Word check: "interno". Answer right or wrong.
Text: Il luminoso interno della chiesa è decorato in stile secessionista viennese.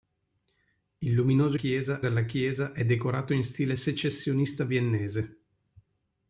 wrong